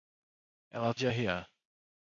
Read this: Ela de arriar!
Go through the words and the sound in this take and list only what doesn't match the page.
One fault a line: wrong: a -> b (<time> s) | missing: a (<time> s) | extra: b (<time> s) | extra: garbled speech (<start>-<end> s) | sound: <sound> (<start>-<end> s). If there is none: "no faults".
no faults